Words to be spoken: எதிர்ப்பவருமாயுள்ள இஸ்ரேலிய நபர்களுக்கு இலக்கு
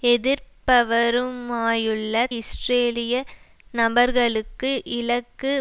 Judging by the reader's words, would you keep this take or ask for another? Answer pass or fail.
pass